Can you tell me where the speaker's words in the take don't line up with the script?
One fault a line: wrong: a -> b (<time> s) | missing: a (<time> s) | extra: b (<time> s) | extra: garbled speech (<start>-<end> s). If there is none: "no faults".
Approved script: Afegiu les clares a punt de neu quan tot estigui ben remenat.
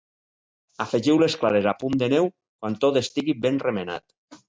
no faults